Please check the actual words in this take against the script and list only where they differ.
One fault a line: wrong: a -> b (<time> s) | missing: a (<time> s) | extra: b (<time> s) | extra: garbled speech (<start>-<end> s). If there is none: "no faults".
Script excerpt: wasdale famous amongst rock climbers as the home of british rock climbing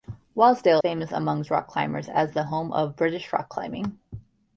no faults